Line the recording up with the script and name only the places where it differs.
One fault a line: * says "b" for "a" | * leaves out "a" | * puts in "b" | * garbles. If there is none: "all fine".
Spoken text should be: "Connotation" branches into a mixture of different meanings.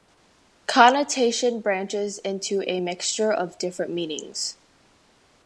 all fine